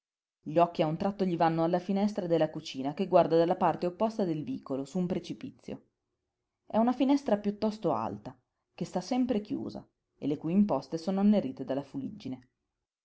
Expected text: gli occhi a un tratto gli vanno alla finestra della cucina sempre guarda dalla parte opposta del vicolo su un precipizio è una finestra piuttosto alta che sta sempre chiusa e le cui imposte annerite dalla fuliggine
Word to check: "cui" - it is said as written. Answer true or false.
true